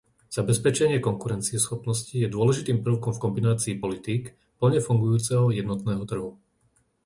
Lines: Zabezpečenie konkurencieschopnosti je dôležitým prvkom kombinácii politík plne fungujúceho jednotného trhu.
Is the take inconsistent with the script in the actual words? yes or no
yes